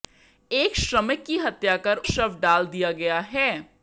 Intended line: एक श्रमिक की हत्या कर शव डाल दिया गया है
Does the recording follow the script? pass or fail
pass